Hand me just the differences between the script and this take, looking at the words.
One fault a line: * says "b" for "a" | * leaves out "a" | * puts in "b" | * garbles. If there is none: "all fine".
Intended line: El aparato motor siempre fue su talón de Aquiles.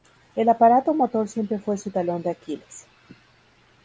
all fine